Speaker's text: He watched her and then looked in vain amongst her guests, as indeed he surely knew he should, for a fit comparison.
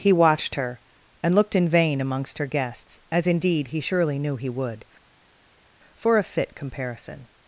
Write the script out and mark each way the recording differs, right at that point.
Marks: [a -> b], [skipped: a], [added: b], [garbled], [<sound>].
He watched her and [skipped: then] looked in vain amongst her guests, as indeed he surely knew he [should, -> would] for a fit comparison.